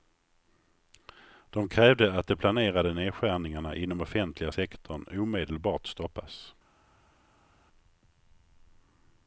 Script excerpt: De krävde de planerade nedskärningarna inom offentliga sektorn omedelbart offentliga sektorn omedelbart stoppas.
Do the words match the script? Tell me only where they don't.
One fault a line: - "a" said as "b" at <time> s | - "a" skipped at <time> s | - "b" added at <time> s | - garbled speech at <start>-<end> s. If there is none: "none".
- "att" added at 2.1 s
- "offentliga sektorn omedelbart" skipped at 5.9 s